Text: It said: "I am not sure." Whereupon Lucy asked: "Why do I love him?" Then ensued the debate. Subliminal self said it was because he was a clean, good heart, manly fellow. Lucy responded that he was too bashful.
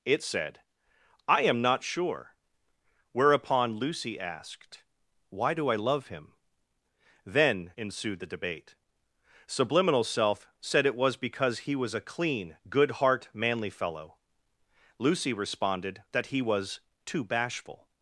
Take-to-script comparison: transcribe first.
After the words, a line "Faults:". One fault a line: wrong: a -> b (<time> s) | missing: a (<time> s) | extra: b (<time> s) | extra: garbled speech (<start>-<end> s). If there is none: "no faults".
It said: "I am not sure." Whereupon Lucy asked: "Why do I love him?" Then ensued the debate. Subliminal self said it was because he was a clean, good heart, manly fellow. Lucy responded that he was too bashful.
Faults:
no faults